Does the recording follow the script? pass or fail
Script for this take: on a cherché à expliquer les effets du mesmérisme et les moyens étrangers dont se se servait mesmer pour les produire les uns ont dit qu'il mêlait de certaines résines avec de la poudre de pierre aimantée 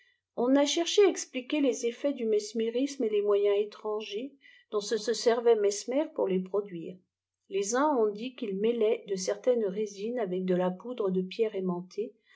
pass